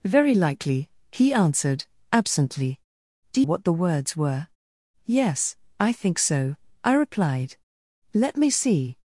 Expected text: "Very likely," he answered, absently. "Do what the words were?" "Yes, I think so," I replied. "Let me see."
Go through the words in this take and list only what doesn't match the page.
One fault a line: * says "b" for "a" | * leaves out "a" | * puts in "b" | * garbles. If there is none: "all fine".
all fine